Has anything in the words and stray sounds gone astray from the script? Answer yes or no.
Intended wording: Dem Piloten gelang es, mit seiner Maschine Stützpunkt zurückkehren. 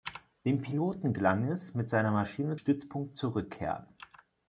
no